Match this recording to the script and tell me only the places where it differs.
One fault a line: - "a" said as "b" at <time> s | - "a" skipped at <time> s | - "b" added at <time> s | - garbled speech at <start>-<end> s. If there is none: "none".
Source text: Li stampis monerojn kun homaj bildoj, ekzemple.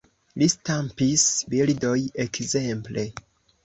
- "monerojn kun homaj" skipped at 1.2 s